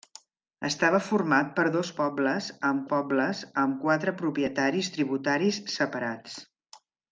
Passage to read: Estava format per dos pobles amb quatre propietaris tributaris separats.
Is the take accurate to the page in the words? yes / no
no